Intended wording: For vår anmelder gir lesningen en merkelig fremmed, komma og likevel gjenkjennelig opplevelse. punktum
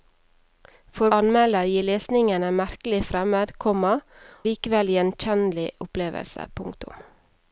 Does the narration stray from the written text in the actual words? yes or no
yes